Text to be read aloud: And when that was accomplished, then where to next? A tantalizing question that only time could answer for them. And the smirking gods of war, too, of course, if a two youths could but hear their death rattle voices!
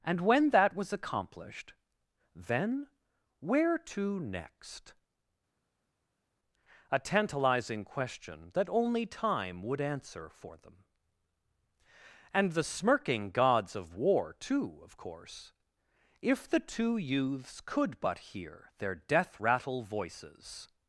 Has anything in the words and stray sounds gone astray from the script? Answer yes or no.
yes